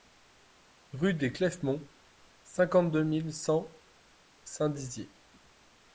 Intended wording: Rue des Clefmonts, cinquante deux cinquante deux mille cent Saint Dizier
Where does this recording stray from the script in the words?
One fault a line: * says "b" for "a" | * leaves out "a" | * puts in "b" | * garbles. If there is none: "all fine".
* leaves out "cinquante deux"